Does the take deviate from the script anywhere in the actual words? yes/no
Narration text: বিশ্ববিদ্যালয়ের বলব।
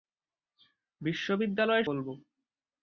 no